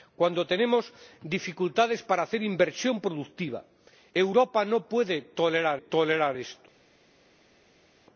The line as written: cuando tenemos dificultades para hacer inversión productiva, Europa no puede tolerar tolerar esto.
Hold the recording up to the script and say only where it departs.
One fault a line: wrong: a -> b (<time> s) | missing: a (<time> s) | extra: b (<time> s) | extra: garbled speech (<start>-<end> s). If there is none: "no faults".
no faults